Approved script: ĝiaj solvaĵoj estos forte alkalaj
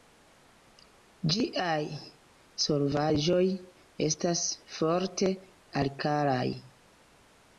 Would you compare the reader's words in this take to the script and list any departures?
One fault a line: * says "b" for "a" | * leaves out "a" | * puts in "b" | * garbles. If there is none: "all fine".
* says "estas" for "estos"